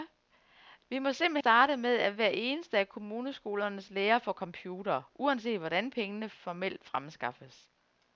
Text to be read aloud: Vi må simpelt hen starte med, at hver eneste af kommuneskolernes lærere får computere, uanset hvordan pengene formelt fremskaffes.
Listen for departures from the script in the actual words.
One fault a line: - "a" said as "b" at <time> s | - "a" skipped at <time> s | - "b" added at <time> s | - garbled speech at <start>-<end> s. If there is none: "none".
- "hen" skipped at 1.4 s